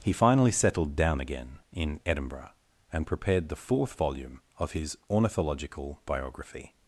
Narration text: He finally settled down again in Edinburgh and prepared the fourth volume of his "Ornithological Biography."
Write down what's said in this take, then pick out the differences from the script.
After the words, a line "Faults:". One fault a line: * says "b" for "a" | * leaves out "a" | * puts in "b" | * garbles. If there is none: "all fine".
He finally settled down again in Edinburgh and prepared the fourth volume of his "Ornithological Biography."
Faults:
all fine